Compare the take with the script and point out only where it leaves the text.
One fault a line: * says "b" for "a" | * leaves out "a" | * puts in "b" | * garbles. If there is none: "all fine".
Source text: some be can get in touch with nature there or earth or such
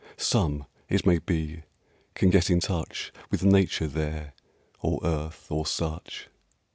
* puts in "it may"